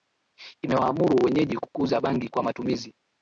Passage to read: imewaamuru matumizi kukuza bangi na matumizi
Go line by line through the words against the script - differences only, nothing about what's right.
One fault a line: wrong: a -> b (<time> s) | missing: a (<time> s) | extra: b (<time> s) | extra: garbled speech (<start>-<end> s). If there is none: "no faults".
wrong: matumizi -> wenyeji (1.2 s)
wrong: na -> kwa (2.3 s)